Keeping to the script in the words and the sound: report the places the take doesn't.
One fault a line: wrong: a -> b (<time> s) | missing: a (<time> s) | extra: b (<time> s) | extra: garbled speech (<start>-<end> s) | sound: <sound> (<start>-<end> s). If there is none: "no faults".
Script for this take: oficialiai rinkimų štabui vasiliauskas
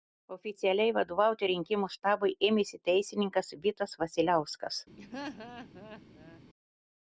extra: vadovauti (0.9 s)
extra: ėmėsi teisininkas vitas (2.5 s)
sound: laugh (5.0-6.4 s)